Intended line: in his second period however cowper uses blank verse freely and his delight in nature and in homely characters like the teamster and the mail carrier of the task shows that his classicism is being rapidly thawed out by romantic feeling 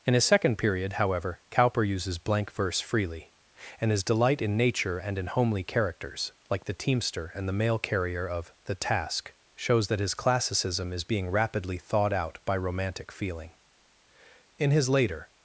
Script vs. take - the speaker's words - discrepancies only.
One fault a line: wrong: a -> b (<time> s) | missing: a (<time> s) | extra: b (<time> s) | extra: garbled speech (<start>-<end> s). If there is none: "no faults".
extra: in his later (14.6 s)